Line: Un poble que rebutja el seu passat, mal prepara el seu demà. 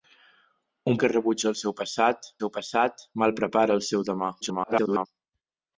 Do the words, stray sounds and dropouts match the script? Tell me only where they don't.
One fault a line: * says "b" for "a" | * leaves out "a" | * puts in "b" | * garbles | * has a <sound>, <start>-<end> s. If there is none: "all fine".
* leaves out "poble"
* puts in "seu passat"
* garbles